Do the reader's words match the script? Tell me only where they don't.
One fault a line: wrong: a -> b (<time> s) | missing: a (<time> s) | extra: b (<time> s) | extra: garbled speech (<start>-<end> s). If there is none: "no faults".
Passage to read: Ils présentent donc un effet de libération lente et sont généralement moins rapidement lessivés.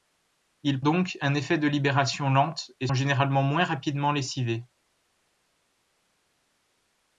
missing: présentent (0.8 s)
missing: sont (2.9 s)